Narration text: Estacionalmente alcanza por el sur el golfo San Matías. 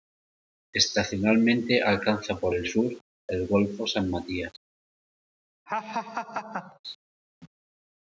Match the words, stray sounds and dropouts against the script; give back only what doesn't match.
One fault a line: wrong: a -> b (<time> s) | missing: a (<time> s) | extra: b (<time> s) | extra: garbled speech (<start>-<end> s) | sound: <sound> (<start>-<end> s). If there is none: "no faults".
sound: laugh (5.7-6.8 s)